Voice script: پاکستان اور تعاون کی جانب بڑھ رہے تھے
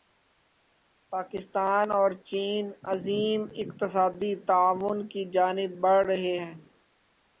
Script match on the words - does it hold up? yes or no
no